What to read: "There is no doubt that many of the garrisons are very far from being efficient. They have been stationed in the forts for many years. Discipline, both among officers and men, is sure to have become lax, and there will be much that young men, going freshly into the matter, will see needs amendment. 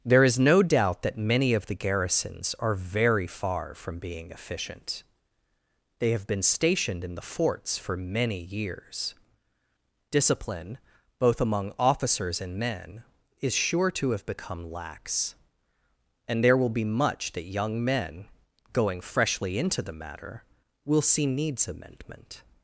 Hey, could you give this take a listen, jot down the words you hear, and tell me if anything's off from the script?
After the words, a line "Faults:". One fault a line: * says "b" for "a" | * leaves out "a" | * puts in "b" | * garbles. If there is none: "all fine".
"There is no doubt that many of the garrisons are very far from being efficient. They have been stationed in the forts for many years. Discipline, both among officers and men, is sure to have become lax, and there will be much that young men, going freshly into the matter, will see needs amendment.
Faults:
all fine